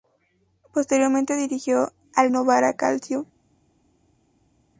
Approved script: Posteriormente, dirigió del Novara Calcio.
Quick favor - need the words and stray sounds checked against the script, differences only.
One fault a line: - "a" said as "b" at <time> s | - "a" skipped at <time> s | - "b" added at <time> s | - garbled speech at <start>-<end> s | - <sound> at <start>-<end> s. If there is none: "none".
- "del" said as "al" at 2.1 s